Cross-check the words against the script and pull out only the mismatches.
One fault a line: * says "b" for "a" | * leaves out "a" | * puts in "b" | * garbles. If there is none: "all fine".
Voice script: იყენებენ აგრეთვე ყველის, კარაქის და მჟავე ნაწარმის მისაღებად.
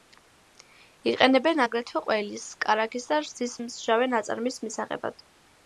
* puts in "რძის"